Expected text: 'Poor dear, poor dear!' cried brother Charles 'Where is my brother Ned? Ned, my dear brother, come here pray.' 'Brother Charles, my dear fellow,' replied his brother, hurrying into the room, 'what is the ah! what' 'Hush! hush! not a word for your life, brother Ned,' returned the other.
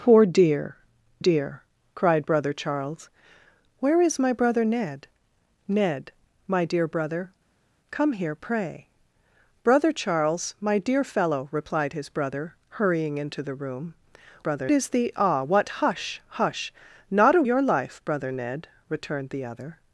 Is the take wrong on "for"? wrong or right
wrong